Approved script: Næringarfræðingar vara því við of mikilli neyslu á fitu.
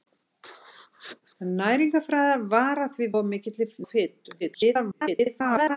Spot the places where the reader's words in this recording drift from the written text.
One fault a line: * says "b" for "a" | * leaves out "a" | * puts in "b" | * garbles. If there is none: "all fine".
* leaves out "við"
* leaves out "neyslu"
* garbles